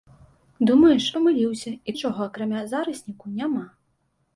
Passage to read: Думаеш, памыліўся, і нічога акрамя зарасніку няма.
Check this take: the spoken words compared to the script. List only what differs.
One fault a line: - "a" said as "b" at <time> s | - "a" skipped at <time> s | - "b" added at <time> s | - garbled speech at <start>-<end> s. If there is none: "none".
none